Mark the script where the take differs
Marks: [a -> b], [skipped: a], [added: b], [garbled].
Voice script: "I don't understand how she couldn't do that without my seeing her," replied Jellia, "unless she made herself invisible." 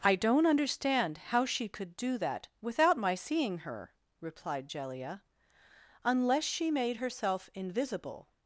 "I don't understand how she [couldn't -> could] do that without my seeing her," replied Jellia, "unless she made herself invisible."